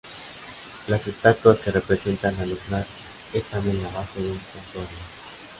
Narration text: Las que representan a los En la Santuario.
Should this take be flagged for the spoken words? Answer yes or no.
yes